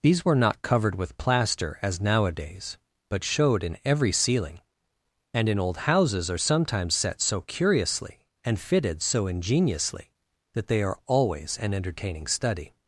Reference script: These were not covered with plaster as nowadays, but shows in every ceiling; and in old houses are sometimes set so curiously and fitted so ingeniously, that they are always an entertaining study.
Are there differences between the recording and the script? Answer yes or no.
yes